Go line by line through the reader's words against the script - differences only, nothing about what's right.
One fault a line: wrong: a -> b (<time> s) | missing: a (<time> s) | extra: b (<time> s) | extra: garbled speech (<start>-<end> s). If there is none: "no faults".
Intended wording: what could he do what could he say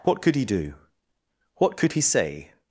no faults